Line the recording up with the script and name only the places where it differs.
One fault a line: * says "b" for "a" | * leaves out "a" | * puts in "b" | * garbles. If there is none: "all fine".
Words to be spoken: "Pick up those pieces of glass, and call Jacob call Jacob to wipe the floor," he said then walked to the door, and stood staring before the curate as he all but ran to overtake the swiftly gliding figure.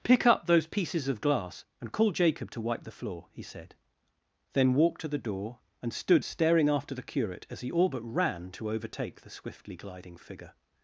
* leaves out "call Jacob"
* says "after" for "before"